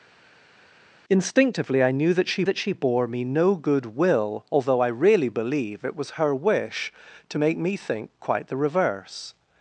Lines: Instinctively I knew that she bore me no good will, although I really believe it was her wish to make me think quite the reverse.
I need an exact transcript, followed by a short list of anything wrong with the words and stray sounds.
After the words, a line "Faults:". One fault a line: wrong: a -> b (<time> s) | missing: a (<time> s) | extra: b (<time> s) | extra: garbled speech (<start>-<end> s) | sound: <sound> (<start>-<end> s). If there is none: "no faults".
Instinctively I knew that she that she bore me no good will, although I really believe it was her wish to make me think quite the reverse.
Faults:
extra: that she (2.4 s)